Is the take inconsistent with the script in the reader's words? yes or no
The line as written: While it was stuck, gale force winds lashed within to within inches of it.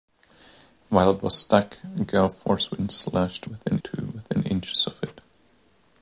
no